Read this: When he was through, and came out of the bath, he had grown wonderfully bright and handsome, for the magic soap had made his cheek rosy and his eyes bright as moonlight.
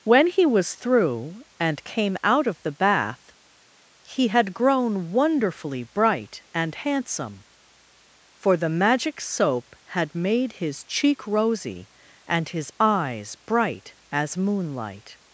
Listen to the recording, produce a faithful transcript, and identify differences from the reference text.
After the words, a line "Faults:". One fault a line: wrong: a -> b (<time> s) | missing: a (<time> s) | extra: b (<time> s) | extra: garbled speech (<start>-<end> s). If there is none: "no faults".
When he was through, and came out of the bath, he had grown wonderfully bright and handsome, for the magic soap had made his cheek rosy and his eyes bright as moonlight.
Faults:
no faults